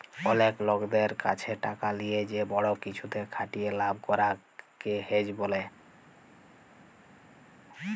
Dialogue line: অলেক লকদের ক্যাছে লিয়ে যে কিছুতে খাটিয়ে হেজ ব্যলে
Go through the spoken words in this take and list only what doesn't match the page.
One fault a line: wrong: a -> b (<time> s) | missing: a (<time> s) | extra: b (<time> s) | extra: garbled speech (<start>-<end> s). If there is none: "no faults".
extra: টাকা (1.7 s)
extra: বড় (2.5 s)
extra: লাভ করাক কে (3.8 s)